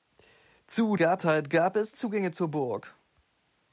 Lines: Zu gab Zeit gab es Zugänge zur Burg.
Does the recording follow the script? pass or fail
pass